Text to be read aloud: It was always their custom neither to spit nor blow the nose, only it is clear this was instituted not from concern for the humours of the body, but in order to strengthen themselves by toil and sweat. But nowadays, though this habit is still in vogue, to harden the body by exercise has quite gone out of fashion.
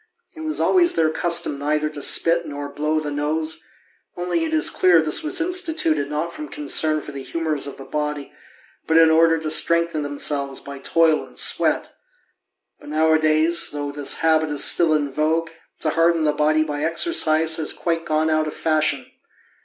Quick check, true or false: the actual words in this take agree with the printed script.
true